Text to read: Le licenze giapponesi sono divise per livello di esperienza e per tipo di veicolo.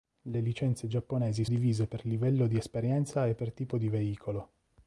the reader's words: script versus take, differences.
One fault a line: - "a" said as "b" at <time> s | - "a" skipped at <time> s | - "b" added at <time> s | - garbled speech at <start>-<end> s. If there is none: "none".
- "sono" skipped at 1.4 s